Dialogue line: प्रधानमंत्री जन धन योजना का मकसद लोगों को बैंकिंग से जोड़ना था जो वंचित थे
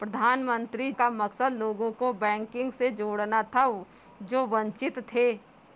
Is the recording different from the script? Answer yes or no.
yes